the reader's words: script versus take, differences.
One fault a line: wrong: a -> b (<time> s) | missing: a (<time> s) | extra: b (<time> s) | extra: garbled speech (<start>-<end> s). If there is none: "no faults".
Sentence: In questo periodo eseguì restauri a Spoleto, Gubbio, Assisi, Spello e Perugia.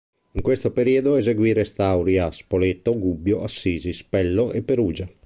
no faults